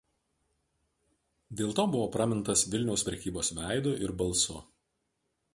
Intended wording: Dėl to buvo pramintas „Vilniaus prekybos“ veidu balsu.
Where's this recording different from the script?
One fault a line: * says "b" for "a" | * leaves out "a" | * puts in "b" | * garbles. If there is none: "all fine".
* puts in "ir"